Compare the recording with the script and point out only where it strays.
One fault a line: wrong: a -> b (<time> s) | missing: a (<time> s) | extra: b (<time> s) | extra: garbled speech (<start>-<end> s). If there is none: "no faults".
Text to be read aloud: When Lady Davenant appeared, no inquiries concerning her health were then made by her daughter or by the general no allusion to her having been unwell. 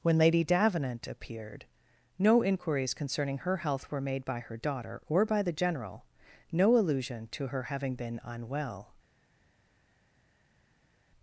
missing: then (4.0 s)